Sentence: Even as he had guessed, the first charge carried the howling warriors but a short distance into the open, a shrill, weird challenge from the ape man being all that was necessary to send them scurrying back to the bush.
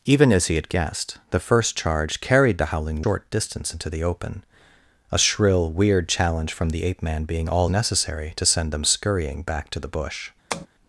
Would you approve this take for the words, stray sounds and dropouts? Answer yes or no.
no